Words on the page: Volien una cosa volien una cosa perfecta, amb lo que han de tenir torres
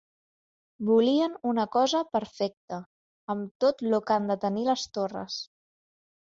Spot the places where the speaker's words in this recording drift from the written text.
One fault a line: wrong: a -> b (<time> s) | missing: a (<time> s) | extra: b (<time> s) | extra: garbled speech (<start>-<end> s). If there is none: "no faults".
missing: volien una cosa (2.0 s)
extra: tot (3.6 s)
extra: les (4.7 s)